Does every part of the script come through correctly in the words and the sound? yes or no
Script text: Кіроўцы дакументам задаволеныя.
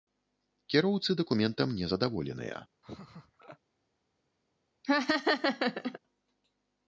no